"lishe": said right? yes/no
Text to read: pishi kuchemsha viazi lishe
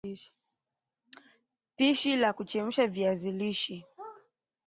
yes